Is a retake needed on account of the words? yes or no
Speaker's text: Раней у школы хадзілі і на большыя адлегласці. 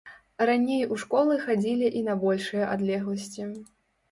no